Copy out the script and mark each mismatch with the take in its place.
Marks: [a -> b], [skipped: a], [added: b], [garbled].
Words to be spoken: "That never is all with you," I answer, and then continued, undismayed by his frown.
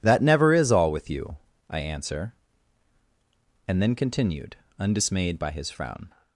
"That never is all with you," I answer, and then continued, undismayed by his frown.